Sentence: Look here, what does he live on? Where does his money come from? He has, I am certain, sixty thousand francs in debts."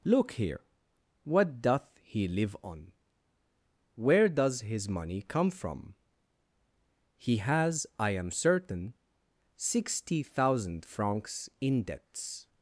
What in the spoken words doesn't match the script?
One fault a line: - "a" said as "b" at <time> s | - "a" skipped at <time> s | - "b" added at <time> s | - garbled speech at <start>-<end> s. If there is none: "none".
- "does" said as "doth" at 1.6 s